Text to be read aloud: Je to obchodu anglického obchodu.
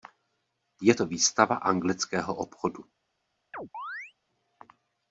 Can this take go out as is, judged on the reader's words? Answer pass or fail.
fail